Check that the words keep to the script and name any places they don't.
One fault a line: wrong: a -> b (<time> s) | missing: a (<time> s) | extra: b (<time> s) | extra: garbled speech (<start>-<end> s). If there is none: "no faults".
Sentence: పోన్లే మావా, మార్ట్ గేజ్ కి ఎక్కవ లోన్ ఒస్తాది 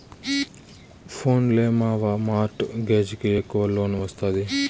no faults